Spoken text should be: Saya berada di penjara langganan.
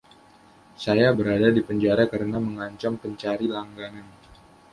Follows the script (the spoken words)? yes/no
no